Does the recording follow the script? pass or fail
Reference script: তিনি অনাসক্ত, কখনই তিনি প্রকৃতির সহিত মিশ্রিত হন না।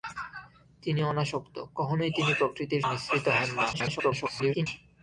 fail